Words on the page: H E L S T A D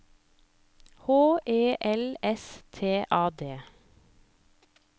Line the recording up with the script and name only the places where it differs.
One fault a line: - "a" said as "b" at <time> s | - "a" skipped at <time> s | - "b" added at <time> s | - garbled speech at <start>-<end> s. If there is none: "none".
none